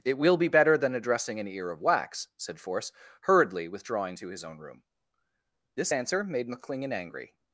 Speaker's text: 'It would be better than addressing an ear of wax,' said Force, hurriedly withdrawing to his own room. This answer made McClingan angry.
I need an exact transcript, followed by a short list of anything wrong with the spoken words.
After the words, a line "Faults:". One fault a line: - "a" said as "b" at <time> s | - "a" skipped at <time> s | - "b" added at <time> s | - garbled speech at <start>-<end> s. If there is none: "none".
'It will be better than addressing an ear of wax,' said Force, hurriedly withdrawing to his own room. This answer made McClingan angry.
Faults:
- "would" said as "will" at 0.2 s